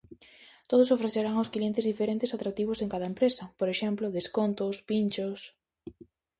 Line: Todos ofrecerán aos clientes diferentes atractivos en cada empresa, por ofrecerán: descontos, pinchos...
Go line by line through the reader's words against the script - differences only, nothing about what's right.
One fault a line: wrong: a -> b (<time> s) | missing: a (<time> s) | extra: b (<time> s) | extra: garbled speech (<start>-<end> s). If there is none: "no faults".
wrong: ofrecerán -> exemplo (3.7 s)